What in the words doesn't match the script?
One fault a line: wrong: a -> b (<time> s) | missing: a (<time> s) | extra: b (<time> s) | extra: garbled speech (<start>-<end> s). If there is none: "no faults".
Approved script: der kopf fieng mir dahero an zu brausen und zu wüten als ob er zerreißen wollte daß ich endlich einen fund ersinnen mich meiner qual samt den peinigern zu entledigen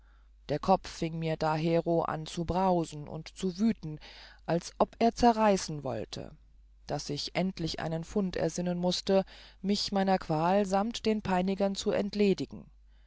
extra: mußte (8.8 s)